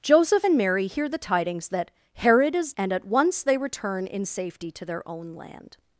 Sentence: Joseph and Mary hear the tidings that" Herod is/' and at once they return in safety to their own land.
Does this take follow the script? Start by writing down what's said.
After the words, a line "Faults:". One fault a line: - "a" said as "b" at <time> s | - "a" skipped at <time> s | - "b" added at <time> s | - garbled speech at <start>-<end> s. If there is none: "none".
Joseph and Mary hear the tidings that" Herod is/' and at once they return in safety to their own land.
Faults:
none